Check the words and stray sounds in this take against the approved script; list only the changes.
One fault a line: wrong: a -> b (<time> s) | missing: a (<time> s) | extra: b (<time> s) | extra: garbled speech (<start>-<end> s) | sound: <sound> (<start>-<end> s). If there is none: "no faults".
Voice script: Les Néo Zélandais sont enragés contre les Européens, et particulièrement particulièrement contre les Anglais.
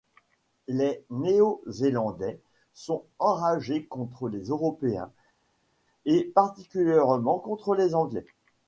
missing: particulièrement (7.4 s)